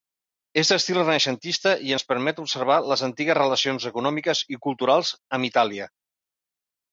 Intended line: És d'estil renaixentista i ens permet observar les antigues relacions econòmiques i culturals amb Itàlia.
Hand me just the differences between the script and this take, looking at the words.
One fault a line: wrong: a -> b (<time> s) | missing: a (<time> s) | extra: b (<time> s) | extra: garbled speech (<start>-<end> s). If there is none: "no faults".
no faults